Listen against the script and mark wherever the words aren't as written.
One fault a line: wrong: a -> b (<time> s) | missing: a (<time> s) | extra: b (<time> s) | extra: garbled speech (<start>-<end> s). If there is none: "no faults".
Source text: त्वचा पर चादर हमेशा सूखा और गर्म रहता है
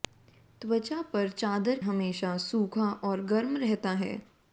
no faults